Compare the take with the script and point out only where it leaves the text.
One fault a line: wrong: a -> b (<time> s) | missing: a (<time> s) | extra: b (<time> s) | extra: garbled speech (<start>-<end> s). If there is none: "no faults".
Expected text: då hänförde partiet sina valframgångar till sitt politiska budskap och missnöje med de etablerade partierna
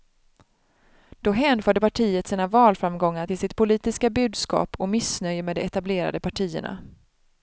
no faults